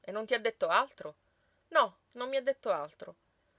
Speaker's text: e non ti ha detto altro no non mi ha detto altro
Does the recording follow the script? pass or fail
pass